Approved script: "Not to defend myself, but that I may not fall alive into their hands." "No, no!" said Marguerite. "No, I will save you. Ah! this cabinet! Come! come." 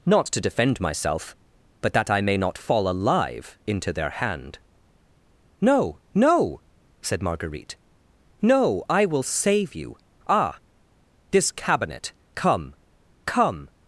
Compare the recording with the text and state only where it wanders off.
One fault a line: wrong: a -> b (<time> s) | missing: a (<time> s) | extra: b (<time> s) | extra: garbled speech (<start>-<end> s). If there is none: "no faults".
wrong: hands -> hand (4.1 s)